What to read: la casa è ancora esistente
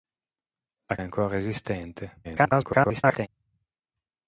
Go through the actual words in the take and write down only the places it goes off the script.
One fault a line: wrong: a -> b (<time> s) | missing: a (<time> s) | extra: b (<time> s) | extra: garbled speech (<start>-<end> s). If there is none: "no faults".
missing: casa (1.0 s)
extra: garbled speech (2.2-3.3 s)